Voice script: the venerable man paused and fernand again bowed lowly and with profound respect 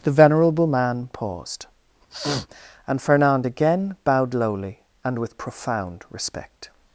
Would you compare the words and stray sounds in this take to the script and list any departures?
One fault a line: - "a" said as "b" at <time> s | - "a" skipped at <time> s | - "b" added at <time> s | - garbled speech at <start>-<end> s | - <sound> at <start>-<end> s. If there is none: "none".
- sniff at 2.1-2.5 s